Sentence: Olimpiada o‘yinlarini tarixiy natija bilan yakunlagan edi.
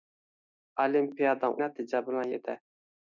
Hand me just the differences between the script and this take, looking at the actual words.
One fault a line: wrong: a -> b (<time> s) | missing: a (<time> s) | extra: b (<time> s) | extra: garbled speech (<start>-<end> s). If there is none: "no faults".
missing: o‘yinlarini tarixiy (1.5 s)
missing: yakunlagan (2.3 s)